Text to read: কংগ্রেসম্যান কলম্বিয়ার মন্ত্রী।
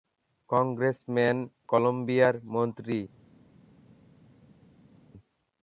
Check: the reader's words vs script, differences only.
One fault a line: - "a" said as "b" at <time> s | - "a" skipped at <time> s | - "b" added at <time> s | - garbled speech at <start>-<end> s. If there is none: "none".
none